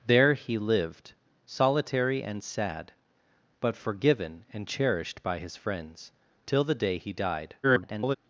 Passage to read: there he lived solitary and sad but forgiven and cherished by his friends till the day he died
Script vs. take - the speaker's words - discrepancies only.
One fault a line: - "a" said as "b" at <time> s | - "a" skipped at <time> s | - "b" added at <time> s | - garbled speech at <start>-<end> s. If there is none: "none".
- garbled speech at 7.6-8.2 s